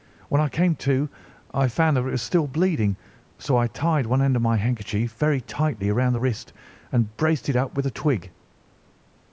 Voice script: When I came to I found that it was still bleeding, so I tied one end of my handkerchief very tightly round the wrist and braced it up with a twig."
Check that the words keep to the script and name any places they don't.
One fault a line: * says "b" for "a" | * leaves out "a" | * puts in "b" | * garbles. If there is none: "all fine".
all fine